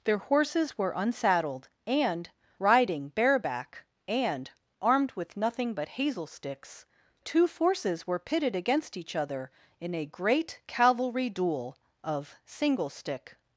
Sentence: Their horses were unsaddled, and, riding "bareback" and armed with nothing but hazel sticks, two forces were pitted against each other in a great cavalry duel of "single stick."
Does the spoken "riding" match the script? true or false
true